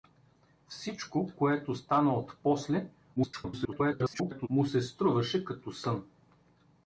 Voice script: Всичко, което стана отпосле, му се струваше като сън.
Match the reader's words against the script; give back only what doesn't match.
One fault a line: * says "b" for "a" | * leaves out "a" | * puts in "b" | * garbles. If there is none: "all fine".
* garbles